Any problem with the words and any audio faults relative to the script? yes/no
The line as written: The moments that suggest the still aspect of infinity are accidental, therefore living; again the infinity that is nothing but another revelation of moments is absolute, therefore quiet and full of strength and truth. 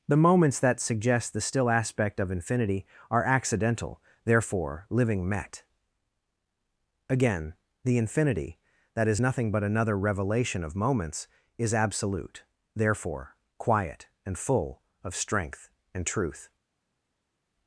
yes